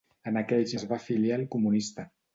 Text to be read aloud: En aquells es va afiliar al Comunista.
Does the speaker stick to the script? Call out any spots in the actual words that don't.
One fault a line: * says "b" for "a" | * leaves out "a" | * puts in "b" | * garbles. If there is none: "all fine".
all fine